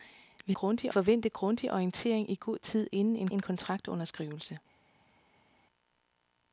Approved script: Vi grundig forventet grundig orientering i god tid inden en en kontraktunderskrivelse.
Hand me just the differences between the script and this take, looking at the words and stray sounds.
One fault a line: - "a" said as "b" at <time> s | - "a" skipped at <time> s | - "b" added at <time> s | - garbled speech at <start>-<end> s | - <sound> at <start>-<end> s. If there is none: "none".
none